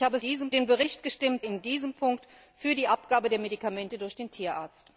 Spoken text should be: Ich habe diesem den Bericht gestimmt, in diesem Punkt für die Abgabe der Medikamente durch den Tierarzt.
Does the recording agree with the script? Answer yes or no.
yes